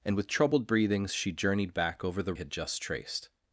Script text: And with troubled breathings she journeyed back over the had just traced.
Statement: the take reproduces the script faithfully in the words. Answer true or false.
true